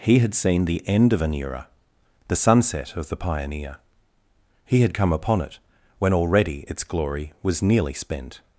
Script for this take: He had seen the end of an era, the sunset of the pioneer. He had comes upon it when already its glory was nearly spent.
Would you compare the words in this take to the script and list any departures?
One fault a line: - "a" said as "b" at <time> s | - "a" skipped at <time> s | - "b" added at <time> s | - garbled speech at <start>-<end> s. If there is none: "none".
- "comes" said as "come" at 4.9 s